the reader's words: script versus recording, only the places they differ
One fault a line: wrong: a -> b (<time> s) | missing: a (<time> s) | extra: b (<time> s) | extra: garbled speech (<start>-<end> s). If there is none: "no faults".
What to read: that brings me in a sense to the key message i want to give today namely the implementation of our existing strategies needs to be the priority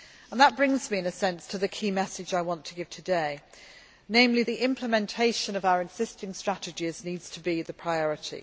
no faults